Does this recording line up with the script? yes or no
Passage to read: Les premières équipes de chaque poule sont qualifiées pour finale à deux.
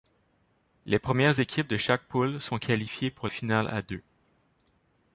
yes